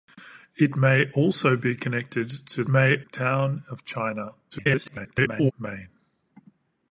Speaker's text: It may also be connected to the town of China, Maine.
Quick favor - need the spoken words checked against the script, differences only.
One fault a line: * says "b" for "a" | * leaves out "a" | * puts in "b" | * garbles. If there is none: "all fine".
* says "may" for "the"
* garbles